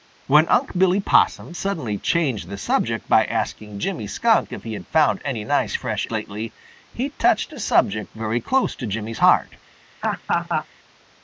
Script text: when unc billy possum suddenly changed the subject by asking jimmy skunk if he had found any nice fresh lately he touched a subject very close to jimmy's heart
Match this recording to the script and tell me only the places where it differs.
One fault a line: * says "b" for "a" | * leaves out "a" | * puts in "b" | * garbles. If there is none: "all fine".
all fine